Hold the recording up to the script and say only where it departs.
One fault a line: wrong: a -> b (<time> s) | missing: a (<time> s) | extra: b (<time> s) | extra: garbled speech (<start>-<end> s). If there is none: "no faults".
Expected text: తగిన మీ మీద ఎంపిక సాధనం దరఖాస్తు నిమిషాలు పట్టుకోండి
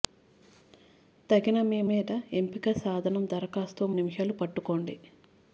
no faults